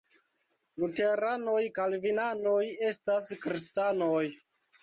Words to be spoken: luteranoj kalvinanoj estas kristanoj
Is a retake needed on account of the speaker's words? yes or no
no